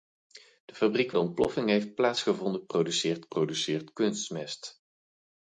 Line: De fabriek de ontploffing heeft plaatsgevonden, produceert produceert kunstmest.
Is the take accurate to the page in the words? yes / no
yes